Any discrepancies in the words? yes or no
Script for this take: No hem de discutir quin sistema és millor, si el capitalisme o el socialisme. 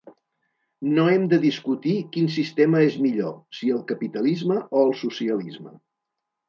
no